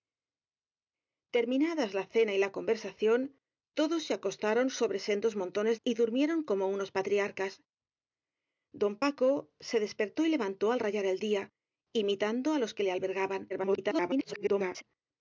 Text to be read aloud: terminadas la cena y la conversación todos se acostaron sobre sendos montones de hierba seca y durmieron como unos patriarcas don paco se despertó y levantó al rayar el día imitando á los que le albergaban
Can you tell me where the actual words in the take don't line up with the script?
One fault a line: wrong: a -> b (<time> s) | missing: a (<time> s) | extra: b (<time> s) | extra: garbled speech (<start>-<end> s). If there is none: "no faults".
missing: de hierba seca (5.8 s)
extra: garbled speech (13.5-14.8 s)